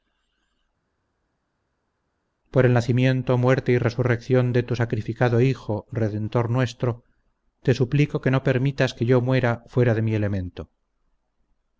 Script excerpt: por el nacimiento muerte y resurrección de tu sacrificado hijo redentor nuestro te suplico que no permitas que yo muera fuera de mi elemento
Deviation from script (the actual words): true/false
false